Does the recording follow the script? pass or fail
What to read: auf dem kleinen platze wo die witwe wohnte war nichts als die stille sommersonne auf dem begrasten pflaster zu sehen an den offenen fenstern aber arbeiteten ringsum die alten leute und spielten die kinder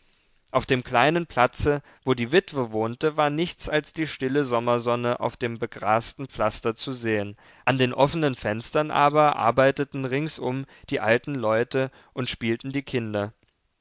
pass